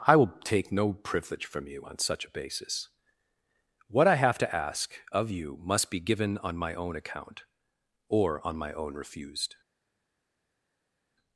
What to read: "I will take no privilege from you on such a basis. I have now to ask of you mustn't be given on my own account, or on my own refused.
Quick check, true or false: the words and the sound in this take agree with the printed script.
false